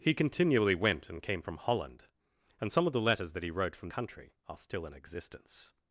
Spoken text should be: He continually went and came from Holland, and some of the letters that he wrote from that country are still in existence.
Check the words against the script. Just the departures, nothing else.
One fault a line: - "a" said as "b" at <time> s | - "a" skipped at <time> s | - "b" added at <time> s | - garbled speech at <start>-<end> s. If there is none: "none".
- "that" skipped at 3.9 s